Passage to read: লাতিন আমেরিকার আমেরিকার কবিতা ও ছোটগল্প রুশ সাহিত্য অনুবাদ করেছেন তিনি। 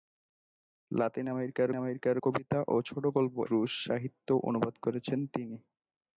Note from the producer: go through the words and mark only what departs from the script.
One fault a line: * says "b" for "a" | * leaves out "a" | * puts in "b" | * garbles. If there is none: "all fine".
all fine